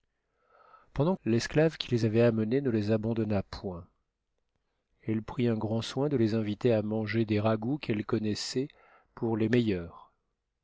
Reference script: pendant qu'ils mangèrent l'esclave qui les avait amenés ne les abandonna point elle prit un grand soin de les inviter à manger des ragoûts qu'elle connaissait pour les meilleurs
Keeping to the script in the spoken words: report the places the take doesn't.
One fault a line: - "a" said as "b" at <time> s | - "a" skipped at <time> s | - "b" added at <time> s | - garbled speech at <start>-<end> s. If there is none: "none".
- "qu'ils mangèrent" skipped at 1.1 s